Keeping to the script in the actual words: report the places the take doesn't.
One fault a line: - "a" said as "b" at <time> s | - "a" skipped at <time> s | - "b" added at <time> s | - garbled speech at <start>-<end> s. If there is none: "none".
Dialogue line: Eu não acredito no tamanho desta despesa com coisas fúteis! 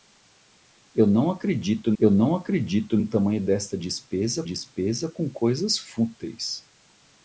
- "eu não acredito" added at 2.0 s
- "despesa" added at 4.4 s